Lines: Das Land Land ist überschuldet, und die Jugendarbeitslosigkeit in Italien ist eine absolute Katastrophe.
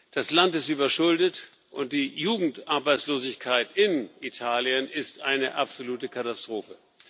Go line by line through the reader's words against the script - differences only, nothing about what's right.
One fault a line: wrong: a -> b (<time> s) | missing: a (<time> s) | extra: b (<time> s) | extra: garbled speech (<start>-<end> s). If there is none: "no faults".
missing: Land (0.6 s)